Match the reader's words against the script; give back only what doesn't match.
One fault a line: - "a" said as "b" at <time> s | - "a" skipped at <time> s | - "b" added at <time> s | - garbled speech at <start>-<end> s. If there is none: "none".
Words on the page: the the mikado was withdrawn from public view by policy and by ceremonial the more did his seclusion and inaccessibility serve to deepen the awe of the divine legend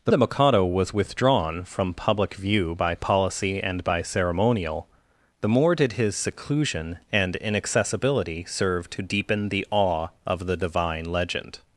none